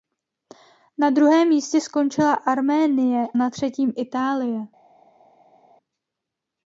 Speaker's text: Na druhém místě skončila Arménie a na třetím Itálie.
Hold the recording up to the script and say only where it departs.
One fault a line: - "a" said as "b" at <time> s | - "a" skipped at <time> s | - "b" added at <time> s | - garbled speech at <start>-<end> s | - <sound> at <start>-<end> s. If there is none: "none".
- "a" skipped at 3.3 s